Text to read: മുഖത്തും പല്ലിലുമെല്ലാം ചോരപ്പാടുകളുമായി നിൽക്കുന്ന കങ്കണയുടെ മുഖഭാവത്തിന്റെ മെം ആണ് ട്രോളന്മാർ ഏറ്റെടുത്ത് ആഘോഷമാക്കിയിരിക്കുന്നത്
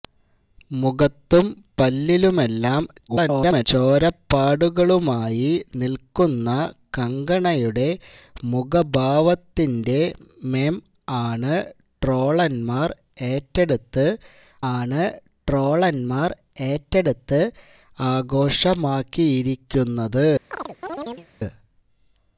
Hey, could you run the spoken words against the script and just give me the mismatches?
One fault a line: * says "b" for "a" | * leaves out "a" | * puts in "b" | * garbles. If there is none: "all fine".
* garbles
* puts in "ആണ് ട്രോളന്മാർ ഏറ്റെടുത്ത്"